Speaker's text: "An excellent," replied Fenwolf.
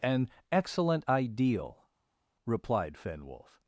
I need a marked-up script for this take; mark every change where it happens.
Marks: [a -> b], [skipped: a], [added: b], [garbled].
"An excellent," [added: ideal] replied Fenwolf.